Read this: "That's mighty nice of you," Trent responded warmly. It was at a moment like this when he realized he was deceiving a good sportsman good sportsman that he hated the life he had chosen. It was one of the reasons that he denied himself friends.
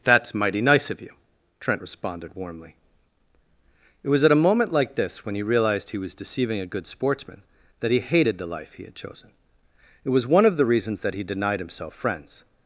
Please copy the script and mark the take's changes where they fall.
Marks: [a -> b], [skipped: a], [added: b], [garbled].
"That's mighty nice of you," Trent responded warmly. It was at a moment like this when he realized he was deceiving a good sportsman [skipped: good sportsman] that he hated the life he had chosen. It was one of the reasons that he denied himself friends.